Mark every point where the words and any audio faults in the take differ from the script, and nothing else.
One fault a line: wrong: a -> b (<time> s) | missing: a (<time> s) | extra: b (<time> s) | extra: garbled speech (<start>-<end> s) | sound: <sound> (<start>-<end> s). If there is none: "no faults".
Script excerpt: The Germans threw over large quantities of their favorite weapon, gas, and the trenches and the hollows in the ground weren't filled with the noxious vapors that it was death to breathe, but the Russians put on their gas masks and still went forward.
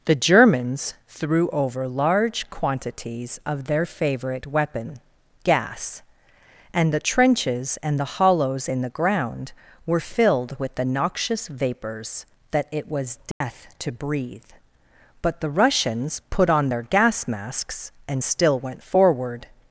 wrong: weren't -> were (9.8 s)
sound: dropout (13.3-13.4 s)